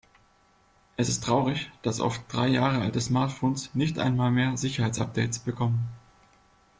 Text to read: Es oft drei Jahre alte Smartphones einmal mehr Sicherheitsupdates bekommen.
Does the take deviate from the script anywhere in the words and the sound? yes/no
yes